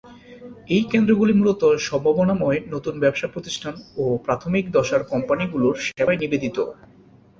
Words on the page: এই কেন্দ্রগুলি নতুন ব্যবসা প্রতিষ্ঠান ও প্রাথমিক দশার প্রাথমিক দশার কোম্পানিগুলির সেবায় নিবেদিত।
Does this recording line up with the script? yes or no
no